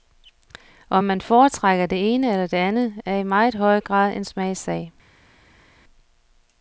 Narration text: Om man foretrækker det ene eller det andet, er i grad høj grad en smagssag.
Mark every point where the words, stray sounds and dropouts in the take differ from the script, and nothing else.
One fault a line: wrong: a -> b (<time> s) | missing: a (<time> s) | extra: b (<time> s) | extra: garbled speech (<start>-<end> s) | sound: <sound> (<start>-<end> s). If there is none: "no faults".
wrong: grad -> meget (3.2 s)